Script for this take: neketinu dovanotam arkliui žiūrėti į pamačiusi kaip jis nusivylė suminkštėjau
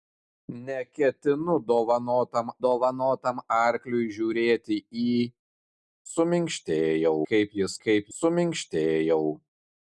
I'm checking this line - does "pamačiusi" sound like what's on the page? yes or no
no